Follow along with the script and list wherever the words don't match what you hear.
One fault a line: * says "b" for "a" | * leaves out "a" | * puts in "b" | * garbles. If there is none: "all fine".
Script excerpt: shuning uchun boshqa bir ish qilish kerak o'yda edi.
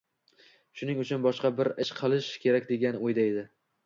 * puts in "degan"